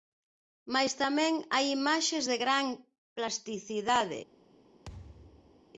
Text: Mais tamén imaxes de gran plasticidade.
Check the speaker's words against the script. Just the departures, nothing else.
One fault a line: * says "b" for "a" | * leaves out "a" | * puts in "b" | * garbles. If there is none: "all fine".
* puts in "hai"